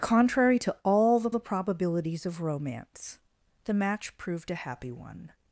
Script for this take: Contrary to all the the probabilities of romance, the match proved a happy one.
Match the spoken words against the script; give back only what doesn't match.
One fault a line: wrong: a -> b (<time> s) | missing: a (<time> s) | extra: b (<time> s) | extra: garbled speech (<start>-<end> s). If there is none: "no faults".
no faults